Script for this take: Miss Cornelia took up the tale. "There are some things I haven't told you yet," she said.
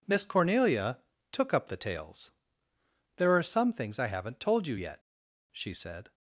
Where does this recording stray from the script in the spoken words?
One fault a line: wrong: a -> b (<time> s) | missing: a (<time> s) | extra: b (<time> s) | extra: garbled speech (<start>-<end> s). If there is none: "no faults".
wrong: tale -> tales (1.8 s)